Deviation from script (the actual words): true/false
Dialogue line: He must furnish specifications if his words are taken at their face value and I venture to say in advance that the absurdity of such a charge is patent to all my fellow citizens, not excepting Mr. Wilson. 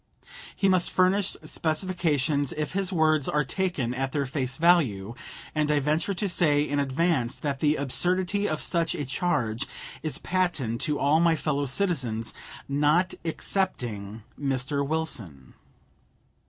false